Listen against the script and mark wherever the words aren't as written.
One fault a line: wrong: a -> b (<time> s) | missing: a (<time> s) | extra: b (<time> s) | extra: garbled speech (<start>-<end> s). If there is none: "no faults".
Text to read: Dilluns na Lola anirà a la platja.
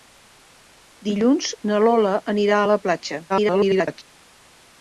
extra: garbled speech (3.3-4.0 s)